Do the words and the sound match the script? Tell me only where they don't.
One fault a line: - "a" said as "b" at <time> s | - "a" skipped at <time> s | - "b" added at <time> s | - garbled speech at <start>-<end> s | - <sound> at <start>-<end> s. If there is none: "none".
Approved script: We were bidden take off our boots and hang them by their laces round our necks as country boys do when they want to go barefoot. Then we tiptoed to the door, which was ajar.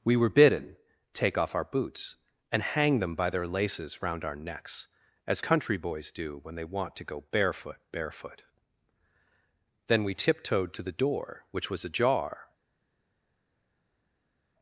- "barefoot" added at 7.9 s